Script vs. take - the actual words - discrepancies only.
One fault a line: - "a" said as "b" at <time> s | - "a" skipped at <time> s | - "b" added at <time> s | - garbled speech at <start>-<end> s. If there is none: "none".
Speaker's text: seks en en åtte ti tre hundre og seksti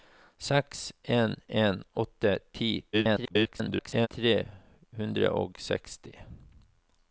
- garbled speech at 2.9-4.1 s